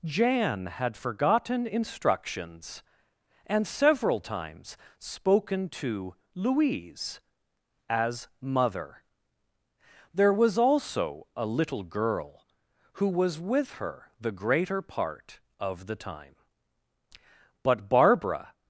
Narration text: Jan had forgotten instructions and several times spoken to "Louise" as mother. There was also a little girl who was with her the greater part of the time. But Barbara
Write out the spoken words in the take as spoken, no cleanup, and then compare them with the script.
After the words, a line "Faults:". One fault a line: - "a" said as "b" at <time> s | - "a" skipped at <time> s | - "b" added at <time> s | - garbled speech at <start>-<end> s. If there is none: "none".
Jan had forgotten instructions and several times spoken to "Louise" as mother. There was also a little girl who was with her the greater part of the time. But Barbara
Faults:
none